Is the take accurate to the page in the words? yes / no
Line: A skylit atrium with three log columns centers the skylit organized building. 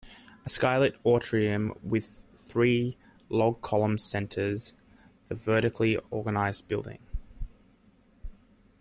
no